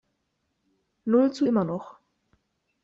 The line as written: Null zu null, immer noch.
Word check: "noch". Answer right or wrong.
right